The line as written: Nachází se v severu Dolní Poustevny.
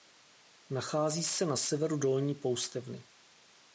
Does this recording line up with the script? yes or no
no